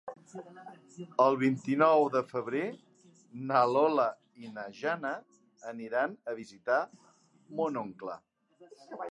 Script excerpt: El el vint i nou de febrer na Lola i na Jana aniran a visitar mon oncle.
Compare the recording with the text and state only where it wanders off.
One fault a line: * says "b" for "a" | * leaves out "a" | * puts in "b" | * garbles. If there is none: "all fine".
* leaves out "el"